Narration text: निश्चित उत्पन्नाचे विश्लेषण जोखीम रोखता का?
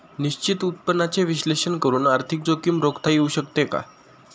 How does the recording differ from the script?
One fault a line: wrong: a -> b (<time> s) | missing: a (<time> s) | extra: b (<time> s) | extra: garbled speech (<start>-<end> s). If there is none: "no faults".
extra: करून आर्थिक (1.8 s)
extra: येऊ शकते (3.1 s)